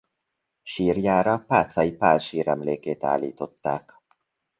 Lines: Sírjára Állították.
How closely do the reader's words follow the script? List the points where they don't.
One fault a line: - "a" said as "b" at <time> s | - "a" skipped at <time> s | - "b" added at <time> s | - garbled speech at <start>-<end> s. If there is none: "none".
- "Pátzay Pál síremlékét" added at 1.5 s